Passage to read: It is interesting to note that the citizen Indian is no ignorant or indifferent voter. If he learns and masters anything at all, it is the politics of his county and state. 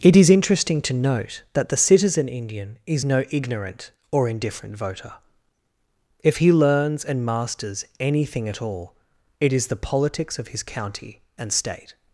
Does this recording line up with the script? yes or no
yes